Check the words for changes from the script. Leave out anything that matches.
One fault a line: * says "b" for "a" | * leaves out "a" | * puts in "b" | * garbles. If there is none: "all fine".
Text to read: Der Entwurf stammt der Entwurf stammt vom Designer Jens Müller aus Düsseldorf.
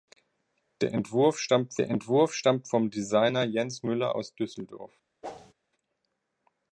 all fine